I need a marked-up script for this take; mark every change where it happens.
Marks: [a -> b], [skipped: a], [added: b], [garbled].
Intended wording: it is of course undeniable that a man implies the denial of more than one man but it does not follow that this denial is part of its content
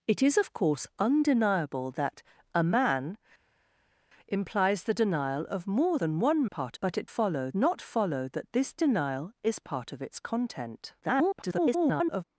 it is of course undeniable that a man implies the denial of more than one [man -> part] but it [does -> follow] not follow that this denial is part of its content [garbled]